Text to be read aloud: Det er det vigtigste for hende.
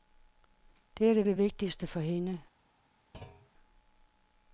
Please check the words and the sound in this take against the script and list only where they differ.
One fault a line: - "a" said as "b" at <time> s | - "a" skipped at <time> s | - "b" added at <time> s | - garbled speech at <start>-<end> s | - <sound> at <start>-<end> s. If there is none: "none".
- "det" added at 1.2 s
- thud at 3.1-3.5 s